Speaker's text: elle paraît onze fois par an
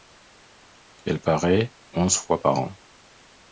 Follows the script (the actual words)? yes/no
yes